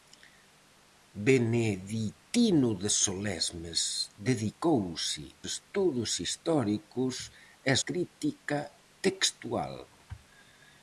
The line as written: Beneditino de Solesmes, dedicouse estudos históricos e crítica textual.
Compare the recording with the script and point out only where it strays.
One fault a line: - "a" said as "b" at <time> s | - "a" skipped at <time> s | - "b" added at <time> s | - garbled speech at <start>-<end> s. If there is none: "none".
none